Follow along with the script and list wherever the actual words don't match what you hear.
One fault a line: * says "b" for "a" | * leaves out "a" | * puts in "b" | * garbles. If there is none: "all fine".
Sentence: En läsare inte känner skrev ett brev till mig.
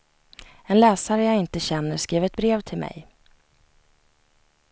* puts in "jag"